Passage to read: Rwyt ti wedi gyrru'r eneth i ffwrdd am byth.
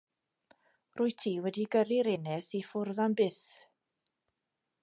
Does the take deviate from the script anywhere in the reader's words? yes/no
no